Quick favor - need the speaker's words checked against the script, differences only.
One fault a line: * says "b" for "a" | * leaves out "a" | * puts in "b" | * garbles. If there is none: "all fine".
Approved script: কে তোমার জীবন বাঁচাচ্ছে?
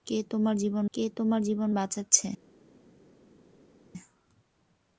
* puts in "কে তোমার জীবন"